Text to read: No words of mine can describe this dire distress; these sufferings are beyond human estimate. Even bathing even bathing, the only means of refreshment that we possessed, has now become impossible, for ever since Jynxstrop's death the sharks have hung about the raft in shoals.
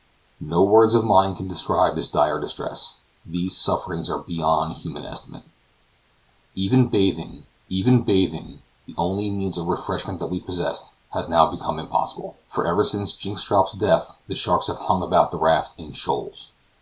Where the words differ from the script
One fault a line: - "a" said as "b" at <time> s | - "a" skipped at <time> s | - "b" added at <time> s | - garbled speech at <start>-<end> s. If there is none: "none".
none